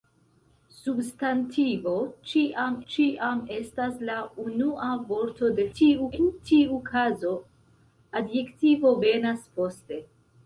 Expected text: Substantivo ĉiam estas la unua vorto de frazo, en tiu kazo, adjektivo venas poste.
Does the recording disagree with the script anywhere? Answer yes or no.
yes